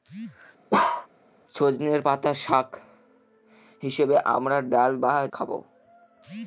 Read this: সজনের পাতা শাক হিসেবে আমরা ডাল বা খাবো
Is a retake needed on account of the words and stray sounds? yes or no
yes